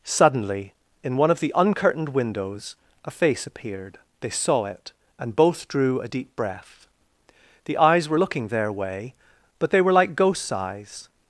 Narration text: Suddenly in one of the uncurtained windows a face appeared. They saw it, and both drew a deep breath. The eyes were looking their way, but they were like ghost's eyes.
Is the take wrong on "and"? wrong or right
right